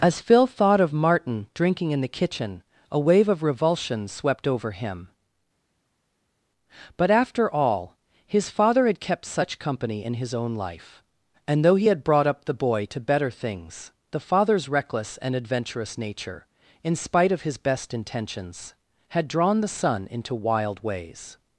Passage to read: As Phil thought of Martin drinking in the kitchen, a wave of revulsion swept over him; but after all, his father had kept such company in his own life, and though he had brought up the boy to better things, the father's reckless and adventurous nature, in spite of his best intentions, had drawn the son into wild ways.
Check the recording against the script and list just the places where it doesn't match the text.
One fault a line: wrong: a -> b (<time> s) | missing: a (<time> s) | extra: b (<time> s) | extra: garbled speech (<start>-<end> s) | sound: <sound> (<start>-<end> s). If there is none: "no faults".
no faults